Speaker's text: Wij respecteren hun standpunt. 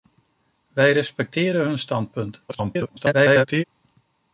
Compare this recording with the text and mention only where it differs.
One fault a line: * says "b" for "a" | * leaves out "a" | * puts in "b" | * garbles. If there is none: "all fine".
* garbles